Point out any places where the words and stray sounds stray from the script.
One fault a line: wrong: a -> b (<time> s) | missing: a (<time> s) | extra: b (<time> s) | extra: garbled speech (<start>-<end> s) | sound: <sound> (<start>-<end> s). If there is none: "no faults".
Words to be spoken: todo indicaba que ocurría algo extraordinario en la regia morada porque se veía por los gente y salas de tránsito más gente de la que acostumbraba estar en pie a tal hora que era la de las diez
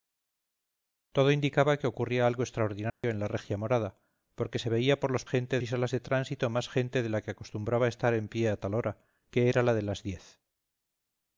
sound: dropout (2.9-3.0 s)